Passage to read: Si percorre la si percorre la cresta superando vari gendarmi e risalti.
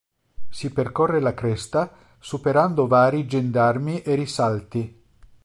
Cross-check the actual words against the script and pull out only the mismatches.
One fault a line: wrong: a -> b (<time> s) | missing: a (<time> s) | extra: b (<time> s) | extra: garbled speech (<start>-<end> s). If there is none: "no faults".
missing: si percorre la (1.4 s)